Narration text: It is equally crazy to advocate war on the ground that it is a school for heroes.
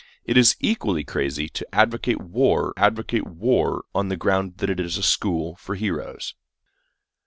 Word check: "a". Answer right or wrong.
right